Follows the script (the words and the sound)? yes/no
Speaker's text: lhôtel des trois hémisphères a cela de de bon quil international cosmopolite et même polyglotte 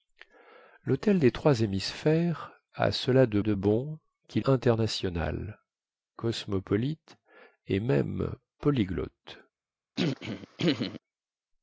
no